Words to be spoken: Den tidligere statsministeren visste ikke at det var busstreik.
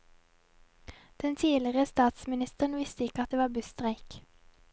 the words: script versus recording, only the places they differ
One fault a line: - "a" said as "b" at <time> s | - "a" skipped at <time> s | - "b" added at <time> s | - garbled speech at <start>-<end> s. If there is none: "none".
none